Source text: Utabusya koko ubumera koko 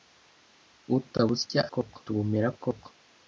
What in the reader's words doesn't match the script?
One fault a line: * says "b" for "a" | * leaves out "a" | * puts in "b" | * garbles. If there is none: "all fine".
all fine